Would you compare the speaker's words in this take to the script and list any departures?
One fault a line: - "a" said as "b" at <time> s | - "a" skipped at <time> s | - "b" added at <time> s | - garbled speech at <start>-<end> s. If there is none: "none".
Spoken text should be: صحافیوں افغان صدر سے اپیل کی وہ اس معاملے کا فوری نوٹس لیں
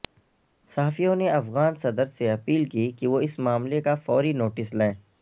- "نے" added at 1.1 s
- "کہ" added at 2.9 s